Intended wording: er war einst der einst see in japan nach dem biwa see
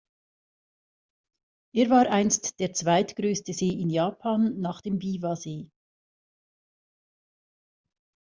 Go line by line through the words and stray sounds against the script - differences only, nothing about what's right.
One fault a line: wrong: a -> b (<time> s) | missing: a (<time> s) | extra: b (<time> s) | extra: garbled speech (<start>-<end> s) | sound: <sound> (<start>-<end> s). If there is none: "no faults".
wrong: einst -> zweitgrößte (2.7 s)